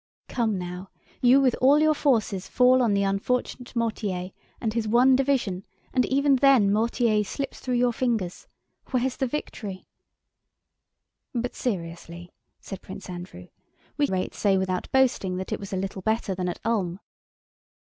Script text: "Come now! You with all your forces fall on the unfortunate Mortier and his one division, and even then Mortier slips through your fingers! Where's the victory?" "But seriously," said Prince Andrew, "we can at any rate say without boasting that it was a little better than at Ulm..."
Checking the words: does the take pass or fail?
fail